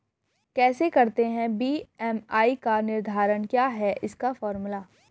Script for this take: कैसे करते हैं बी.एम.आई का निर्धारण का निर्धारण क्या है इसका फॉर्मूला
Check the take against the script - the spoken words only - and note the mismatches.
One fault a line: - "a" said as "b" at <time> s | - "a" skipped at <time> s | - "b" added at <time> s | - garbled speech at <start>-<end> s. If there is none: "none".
- "का निर्धारण" skipped at 3.5 s